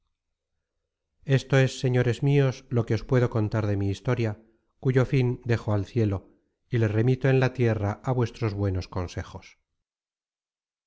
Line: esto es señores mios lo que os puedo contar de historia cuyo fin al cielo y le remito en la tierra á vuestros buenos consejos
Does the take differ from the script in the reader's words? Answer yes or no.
yes